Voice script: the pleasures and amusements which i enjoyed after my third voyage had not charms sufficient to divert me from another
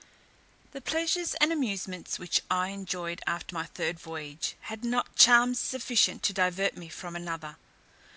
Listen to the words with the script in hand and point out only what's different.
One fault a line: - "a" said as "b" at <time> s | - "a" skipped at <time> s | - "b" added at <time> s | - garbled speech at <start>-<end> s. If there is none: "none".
none